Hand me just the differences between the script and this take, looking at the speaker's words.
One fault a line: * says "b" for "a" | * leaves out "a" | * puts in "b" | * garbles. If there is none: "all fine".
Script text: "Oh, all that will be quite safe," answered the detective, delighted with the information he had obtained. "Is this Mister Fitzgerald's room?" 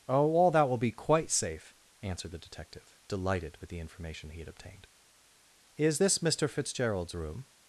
all fine